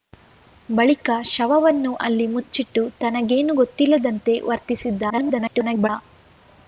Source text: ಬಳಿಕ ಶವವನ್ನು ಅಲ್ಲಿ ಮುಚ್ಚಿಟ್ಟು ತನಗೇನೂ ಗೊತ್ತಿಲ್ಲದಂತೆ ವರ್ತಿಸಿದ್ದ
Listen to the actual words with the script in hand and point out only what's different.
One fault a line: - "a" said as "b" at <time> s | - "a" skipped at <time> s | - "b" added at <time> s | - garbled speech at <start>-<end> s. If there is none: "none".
- garbled speech at 5.1-5.9 s